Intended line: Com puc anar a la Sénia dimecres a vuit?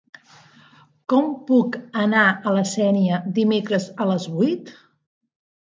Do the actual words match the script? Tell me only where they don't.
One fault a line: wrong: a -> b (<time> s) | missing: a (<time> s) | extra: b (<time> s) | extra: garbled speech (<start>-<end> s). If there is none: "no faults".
extra: les (4.1 s)